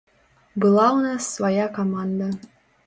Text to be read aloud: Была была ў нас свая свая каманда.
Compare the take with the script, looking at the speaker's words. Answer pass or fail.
fail